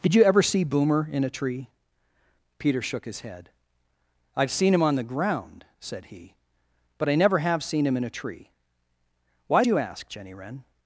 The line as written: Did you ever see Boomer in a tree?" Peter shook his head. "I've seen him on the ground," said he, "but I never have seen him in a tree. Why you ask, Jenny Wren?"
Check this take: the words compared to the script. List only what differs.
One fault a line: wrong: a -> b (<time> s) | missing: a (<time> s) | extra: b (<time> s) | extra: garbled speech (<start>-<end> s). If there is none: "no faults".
no faults